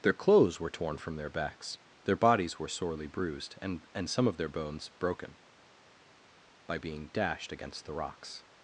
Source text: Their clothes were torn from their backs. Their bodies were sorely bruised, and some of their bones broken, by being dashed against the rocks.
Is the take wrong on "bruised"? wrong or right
right